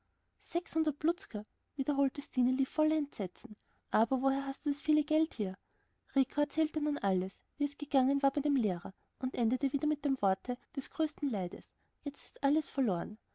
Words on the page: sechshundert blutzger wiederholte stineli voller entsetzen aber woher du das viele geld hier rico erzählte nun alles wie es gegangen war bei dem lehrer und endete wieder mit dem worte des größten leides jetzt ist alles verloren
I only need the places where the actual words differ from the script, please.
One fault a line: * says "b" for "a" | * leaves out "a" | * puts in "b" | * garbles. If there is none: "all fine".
* puts in "hast"